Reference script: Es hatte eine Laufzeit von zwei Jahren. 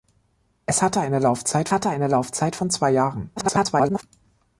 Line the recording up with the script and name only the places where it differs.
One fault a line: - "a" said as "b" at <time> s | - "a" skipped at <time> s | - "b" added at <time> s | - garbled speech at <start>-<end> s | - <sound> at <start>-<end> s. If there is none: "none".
- "hatte eine Laufzeit" added at 1.7 s
- garbled speech at 3.4-4.0 s